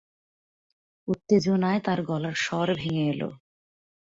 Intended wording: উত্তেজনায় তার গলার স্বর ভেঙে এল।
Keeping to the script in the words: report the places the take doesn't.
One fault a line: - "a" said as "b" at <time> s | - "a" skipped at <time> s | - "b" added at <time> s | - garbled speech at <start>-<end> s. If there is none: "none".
none